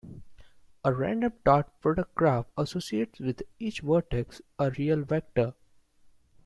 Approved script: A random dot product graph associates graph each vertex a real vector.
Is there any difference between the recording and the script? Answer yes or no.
yes